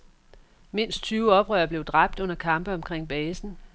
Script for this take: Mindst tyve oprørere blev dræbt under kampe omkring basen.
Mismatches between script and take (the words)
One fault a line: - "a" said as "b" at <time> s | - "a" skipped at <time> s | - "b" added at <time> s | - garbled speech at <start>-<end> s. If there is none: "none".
none